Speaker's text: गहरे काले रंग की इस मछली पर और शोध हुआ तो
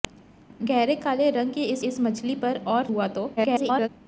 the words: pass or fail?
fail